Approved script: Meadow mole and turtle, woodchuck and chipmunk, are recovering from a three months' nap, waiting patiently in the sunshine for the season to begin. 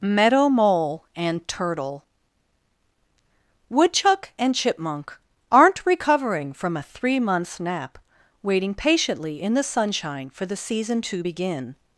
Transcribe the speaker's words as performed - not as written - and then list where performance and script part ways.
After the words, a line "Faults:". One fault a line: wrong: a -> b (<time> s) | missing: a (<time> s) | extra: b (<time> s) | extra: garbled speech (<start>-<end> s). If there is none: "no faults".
Meadow mole and turtle, woodchuck and chipmunk, aren't recovering from a three months' nap, waiting patiently in the sunshine for the season to begin.
Faults:
wrong: are -> aren't (5.5 s)